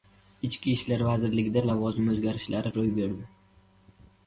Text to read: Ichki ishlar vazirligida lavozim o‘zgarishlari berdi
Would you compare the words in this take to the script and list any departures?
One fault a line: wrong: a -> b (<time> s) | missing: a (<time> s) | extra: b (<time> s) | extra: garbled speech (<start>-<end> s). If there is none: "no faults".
extra: ro‘y (2.8 s)